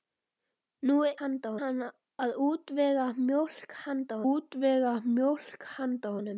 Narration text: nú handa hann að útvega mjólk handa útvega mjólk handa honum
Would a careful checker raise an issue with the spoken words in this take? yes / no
no